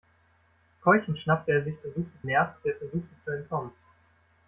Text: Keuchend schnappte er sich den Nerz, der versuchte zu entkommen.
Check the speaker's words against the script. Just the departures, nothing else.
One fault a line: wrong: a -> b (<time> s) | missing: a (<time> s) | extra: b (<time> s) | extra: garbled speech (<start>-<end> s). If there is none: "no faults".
wrong: den -> versuchte (1.8 s)